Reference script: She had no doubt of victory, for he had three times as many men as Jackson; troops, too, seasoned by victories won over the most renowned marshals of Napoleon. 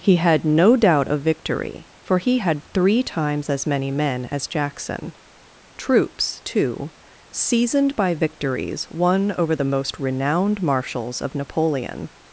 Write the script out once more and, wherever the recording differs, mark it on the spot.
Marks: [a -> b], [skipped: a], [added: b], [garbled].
[She -> He] had no doubt of victory, for he had three times as many men as Jackson; troops, too, seasoned by victories won over the most renowned marshals of Napoleon.